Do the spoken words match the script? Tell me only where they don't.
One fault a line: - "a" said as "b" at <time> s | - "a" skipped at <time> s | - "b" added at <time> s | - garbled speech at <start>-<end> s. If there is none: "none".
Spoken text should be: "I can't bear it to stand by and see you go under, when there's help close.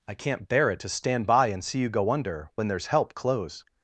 none